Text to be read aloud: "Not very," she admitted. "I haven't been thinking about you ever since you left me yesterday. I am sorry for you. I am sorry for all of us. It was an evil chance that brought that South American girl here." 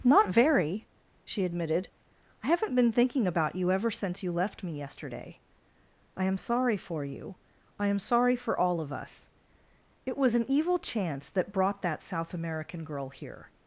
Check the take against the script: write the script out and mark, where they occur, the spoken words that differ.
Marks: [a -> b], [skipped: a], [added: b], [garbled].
"Not very," she admitted. "I haven't been thinking about you ever since you left me yesterday. I am sorry for you. I am sorry for all of us. It was an evil chance that brought that South American girl here."